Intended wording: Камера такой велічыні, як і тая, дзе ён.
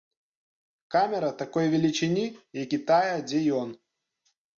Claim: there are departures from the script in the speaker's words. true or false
false